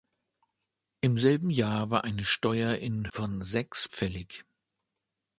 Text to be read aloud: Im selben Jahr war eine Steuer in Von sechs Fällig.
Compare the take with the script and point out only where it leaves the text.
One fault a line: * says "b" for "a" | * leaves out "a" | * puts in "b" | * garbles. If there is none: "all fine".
all fine